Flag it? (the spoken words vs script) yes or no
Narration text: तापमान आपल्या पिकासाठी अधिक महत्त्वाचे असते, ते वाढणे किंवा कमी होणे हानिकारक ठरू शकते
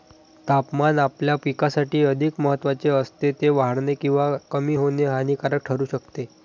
no